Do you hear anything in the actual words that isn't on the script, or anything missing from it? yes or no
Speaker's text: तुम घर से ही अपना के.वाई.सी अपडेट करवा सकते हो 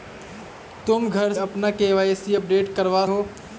yes